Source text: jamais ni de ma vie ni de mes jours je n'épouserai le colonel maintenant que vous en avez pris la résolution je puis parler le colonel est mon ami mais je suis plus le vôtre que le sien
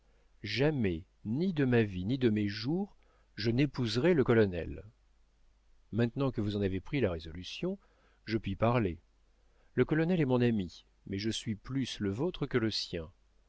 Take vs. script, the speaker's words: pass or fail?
pass